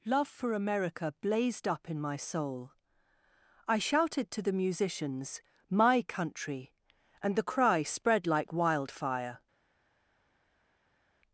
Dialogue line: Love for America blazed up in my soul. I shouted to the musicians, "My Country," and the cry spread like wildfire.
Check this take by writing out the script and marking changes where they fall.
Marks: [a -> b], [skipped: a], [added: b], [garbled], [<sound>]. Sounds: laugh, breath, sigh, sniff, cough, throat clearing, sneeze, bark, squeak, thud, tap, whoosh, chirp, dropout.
Love for America blazed up in my soul. I shouted to the musicians, "My Country," and the cry spread like wildfire.